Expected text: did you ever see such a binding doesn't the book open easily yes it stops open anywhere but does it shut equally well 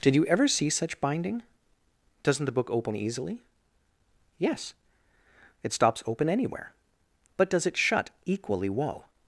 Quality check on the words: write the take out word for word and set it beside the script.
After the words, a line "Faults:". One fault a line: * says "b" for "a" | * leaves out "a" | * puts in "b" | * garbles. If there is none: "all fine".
did you ever see such binding doesn't the book open easily yes it stops open anywhere but does it shut equally well
Faults:
* leaves out "a"